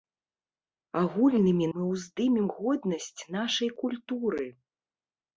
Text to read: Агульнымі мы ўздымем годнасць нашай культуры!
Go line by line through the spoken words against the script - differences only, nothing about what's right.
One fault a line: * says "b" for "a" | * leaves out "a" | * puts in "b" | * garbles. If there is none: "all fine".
all fine